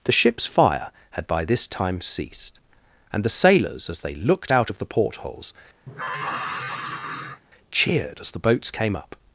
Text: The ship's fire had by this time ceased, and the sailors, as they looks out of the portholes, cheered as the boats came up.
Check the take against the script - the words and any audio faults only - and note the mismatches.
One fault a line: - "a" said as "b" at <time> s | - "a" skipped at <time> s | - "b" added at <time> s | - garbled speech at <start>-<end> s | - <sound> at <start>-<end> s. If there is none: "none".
- "looks" said as "looked" at 4.2 s
- sigh at 5.9-7.4 s